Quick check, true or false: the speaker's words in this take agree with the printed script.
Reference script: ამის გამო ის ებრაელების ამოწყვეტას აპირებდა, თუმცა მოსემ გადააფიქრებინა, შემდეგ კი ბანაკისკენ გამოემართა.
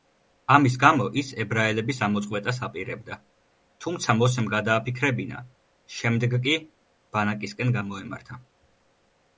true